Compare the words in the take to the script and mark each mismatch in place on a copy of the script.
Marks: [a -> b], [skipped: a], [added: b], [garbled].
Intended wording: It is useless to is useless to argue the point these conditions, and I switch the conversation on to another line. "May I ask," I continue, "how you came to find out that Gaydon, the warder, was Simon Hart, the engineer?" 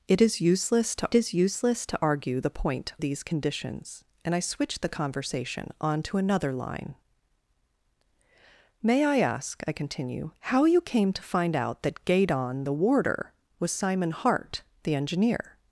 It is useless to is useless to argue the point these conditions, and I switch the conversation on to another line. "May I ask," I continue, "how you came to find out that Gaydon, the warder, was Simon Hart, the engineer?"